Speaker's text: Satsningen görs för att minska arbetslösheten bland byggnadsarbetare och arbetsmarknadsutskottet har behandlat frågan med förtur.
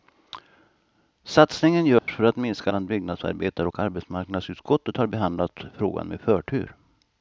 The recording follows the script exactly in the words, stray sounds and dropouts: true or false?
false